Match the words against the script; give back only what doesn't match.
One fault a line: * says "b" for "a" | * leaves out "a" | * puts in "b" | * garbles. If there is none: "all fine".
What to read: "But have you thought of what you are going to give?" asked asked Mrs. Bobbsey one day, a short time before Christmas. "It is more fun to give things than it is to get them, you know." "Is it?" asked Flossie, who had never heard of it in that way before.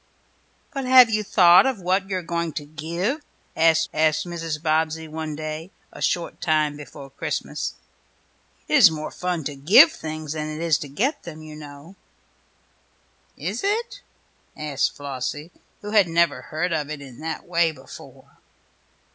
all fine